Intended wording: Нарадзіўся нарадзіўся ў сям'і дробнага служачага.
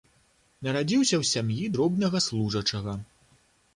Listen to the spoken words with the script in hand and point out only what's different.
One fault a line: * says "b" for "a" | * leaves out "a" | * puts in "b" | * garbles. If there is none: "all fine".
* leaves out "нарадзіўся"